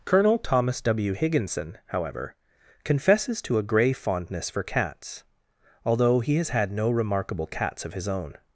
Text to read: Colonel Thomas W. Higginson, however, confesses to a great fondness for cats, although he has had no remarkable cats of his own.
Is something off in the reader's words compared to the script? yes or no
yes